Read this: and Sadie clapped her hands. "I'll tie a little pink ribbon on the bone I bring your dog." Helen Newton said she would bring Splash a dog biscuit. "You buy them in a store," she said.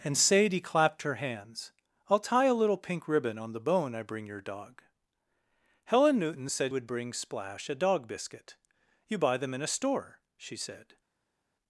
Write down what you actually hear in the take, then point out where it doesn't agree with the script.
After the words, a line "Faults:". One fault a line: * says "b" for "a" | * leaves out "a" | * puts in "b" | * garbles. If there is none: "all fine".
and Sadie clapped her hands. "I'll tie a little pink ribbon on the bone I bring your dog." Helen Newton said would bring Splash a dog biscuit. "You buy them in a store," she said.
Faults:
* leaves out "she"